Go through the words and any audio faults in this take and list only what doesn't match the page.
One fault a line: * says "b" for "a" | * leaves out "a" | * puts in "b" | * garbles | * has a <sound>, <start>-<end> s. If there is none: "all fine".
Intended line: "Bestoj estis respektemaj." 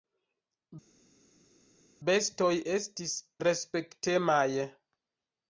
all fine